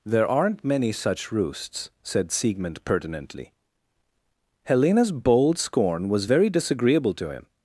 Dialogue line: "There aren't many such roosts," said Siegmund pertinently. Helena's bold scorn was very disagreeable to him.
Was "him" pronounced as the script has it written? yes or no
yes